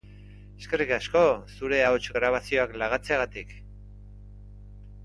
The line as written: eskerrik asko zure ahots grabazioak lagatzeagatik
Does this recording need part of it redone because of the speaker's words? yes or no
no